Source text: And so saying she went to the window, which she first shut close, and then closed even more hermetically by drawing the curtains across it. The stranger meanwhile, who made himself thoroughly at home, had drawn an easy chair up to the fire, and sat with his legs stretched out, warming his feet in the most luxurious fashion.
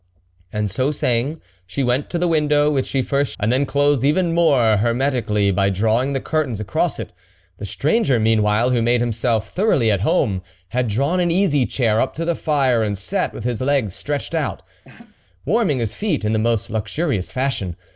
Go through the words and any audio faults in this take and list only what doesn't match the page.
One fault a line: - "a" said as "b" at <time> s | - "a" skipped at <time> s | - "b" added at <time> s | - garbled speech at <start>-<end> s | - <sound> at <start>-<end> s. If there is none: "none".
- "shut close" skipped at 3.3 s
- laugh at 14.8-15.2 s